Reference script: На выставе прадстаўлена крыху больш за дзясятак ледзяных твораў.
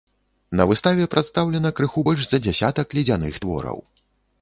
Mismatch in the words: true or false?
false